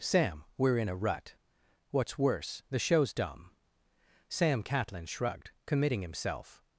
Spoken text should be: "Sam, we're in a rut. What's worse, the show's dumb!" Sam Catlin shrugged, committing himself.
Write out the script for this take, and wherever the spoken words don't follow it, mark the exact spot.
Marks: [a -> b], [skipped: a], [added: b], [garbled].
"Sam, we're in a rut. What's worse, the show's dumb!" Sam Catlin shrugged, committing himself.